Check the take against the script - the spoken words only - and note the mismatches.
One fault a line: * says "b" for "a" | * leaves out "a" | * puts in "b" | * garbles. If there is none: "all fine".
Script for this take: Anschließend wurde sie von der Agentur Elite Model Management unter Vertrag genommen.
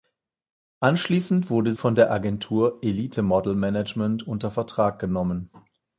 * leaves out "sie"